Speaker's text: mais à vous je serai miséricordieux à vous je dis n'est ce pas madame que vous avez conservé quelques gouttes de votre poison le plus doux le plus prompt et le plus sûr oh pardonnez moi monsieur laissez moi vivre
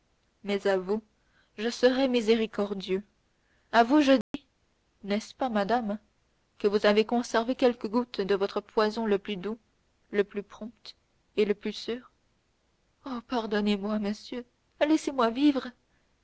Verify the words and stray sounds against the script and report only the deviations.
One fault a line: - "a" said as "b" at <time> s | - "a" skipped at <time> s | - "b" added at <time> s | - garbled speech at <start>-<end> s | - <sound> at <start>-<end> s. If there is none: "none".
- dropout at 4.2-4.3 s